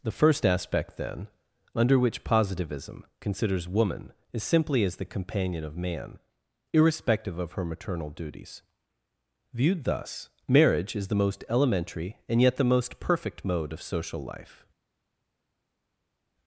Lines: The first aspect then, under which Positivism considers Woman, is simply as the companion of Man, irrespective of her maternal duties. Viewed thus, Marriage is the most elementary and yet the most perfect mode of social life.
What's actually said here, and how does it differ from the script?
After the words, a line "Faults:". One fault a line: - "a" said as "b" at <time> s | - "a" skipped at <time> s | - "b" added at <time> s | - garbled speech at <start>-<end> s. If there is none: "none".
The first aspect then, under which Positivism considers Woman, is simply as the companion of Man, irrespective of her maternal duties. Viewed thus, Marriage is the most elementary and yet the most perfect mode of social life.
Faults:
none